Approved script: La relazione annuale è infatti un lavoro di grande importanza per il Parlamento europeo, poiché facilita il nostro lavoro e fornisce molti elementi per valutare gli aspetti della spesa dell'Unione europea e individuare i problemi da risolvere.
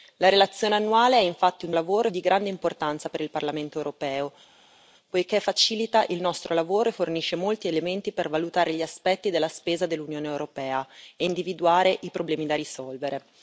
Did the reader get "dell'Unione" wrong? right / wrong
right